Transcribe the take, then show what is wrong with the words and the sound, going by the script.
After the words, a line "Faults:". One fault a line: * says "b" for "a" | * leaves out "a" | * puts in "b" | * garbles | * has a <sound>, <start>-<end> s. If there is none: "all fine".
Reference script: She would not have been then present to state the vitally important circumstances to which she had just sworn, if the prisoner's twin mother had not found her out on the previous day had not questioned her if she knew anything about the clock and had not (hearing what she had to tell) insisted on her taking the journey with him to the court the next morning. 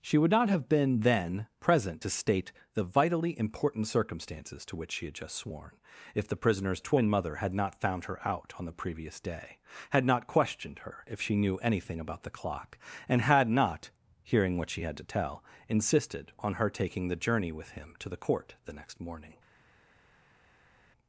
She would not have been then present to state the vitally important circumstances to which she had just sworn, if the prisoner's twin mother had not found her out on the previous day had not questioned her if she knew anything about the clock and had not (hearing what she had to tell) insisted on her taking the journey with him to the court the next morning.
Faults:
all fine